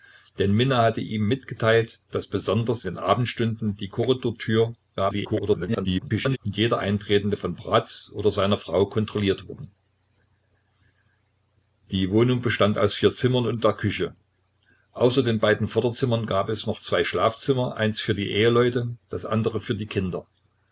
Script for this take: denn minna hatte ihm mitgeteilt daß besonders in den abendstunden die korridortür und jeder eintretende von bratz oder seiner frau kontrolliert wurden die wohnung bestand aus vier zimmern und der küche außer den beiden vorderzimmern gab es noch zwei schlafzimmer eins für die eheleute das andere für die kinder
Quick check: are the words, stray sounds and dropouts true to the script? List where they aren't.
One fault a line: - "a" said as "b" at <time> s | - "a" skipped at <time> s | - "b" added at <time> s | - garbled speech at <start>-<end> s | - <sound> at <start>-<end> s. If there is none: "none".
- "in" skipped at 2.9 s
- garbled speech at 5.0-6.4 s